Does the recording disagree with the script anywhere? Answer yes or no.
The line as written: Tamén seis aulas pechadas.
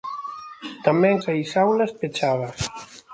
no